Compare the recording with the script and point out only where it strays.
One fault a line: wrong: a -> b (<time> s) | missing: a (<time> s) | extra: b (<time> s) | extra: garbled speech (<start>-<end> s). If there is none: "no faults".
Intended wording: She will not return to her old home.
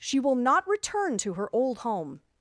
no faults